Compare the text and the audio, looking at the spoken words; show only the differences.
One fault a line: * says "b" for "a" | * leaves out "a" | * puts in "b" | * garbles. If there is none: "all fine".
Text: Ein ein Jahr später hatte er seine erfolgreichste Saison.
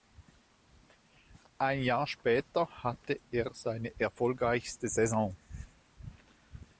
* leaves out "ein"